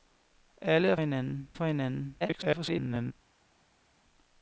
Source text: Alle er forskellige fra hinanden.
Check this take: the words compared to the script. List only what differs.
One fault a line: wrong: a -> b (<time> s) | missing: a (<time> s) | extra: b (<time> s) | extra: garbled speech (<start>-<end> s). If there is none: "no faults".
wrong: forskellige -> hinanden (1.0 s)
extra: garbled speech (2.2-3.1 s)